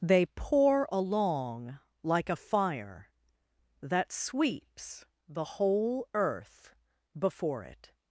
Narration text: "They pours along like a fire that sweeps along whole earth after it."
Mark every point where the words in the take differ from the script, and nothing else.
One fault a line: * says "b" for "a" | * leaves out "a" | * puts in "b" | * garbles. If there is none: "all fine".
* says "pour" for "pours"
* says "the" for "along"
* says "before" for "after"